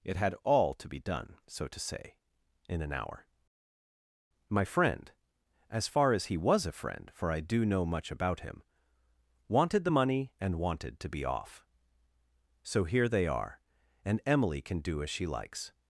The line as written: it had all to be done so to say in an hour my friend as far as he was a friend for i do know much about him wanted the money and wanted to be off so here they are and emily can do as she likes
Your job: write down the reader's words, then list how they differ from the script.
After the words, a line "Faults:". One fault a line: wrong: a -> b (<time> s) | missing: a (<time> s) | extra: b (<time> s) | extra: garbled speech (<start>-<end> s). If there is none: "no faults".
it had all to be done so to say in an hour my friend as far as he was a friend for i do know much about him wanted the money and wanted to be off so here they are and emily can do as she likes
Faults:
no faults